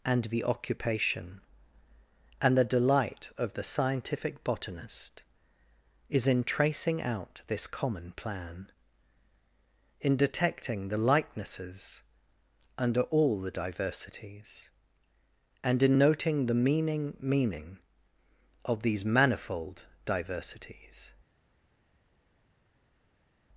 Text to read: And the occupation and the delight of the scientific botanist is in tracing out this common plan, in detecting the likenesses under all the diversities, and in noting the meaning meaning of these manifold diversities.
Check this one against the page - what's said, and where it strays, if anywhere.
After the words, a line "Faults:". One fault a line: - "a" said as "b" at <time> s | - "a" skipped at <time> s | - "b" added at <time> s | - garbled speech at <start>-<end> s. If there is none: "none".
And the occupation and the delight of the scientific botanist is in tracing out this common plan, in detecting the likenesses under all the diversities, and in noting the meaning meaning of these manifold diversities.
Faults:
none